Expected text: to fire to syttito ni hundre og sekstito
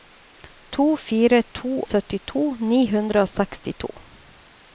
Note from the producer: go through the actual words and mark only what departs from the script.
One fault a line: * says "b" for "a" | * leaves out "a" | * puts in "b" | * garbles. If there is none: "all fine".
all fine